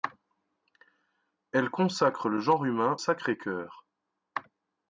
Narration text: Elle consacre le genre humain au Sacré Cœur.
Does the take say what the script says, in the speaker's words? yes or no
no